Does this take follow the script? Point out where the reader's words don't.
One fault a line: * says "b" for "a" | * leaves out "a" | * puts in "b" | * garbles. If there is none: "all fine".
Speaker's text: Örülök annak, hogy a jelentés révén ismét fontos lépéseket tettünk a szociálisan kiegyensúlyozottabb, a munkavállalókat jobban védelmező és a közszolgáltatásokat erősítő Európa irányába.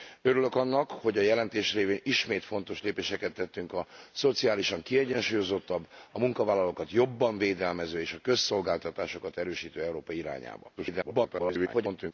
* garbles